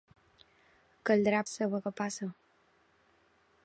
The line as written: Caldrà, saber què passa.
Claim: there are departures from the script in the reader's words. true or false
false